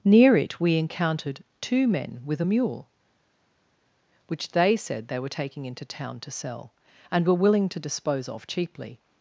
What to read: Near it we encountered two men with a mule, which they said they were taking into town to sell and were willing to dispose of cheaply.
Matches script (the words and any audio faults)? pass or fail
pass